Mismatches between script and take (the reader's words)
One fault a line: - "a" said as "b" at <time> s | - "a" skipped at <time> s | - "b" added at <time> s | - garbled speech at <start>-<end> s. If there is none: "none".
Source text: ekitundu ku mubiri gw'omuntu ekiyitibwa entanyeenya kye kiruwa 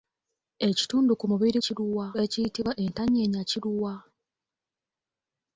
- "gw'omuntu" said as "kiruwa" at 1.6 s
- "kye" skipped at 3.5 s